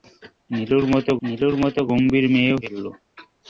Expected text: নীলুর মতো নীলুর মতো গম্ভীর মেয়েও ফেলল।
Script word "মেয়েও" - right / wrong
right